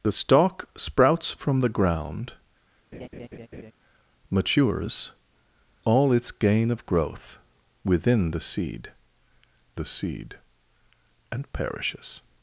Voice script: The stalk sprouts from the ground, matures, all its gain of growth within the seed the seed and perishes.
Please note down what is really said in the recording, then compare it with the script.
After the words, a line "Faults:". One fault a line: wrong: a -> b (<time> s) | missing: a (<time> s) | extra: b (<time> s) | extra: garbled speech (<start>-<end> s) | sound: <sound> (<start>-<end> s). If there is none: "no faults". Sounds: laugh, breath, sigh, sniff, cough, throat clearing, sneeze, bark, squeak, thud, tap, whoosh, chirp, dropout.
The stalk sprouts from the ground, matures, all its gain of growth within the seed the seed and perishes.
Faults:
sound: laugh (2.9-3.7 s)